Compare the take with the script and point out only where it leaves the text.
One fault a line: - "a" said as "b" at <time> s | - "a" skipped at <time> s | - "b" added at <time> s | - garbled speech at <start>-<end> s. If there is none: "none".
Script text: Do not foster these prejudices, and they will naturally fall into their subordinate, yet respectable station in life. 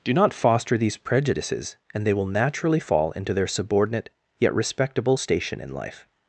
none